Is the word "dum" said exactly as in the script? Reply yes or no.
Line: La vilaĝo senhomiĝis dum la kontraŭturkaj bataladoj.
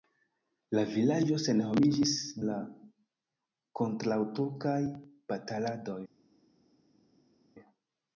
no